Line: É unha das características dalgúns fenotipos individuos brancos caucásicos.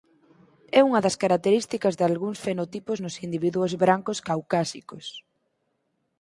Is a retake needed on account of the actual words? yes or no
yes